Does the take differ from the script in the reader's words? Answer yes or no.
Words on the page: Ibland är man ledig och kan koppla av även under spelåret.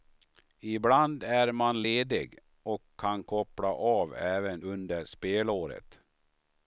no